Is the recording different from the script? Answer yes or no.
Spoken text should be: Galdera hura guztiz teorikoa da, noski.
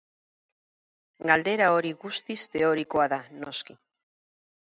yes